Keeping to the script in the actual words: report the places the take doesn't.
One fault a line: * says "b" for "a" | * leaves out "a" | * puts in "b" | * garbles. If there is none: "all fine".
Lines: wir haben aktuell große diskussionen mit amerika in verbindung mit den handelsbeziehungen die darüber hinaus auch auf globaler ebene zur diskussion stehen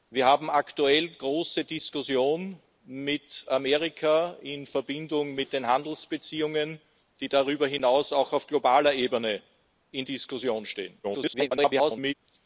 * garbles